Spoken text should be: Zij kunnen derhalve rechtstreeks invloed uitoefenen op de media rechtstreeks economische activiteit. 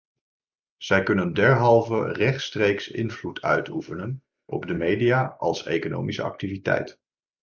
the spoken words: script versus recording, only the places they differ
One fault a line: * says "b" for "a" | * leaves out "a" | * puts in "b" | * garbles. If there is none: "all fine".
* says "als" for "rechtstreeks"